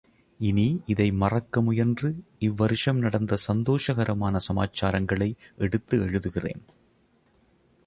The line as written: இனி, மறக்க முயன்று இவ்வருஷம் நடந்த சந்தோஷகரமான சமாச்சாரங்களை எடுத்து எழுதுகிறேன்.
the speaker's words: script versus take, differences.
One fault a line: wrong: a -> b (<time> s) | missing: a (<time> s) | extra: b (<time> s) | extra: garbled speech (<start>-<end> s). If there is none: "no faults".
extra: இதை (0.8 s)